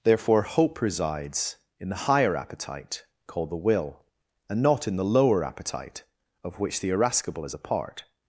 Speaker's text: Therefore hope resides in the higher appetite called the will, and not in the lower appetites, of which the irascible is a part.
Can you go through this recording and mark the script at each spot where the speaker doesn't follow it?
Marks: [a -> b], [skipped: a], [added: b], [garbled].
Therefore hope resides in the higher appetite called the will, and not in the lower [appetites, -> appetite] of which the irascible is a part.